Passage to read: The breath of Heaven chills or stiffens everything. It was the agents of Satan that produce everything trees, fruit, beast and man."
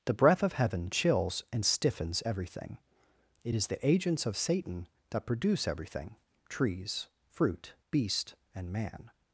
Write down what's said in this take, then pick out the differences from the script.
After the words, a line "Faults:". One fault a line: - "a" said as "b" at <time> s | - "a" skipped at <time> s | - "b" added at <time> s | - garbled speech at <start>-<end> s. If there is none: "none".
The breath of Heaven chills and stiffens everything. It is the agents of Satan that produce everything trees, fruit, beast and man."
Faults:
- "or" said as "and" at 1.5 s
- "was" said as "is" at 3.5 s